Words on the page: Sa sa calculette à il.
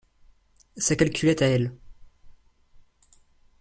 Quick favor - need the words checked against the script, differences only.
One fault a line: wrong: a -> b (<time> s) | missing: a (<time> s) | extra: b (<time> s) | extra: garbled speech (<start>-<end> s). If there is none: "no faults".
missing: sa (0.9 s)
wrong: il -> elle (1.5 s)